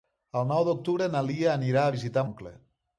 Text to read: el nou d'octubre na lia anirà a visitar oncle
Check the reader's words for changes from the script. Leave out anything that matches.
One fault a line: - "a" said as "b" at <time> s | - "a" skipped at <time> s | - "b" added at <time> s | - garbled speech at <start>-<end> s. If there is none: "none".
none